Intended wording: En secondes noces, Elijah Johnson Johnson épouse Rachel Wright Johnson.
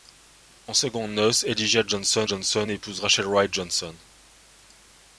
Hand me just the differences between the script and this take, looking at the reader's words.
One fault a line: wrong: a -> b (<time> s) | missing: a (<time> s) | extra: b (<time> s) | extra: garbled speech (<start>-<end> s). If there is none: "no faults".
no faults